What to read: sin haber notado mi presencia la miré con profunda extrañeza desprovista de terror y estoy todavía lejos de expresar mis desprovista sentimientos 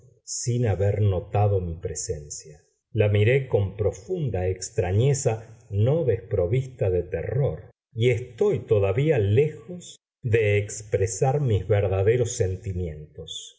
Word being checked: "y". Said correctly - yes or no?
yes